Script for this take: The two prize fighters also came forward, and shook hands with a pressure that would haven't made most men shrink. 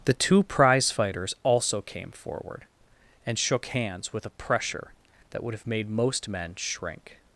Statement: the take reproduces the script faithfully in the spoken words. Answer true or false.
false